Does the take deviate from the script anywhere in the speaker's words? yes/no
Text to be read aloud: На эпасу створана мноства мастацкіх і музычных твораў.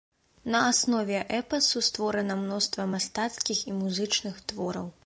yes